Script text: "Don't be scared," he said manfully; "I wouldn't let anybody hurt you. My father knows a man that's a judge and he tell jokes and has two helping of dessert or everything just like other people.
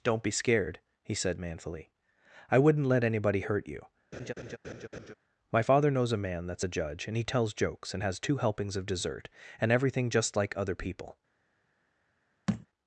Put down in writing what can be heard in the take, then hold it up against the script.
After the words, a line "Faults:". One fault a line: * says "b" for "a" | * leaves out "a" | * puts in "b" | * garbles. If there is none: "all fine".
"Don't be scared," he said manfully; "I wouldn't let anybody hurt you. My father knows a man that's a judge and he tells jokes and has two helpings of dessert and everything just like other people.
Faults:
* says "tells" for "tell"
* says "helpings" for "helping"
* says "and" for "or"